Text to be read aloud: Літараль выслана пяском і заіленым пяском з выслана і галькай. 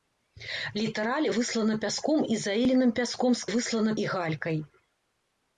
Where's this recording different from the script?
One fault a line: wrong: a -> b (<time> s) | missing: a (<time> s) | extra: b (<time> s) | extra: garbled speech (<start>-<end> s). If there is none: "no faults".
no faults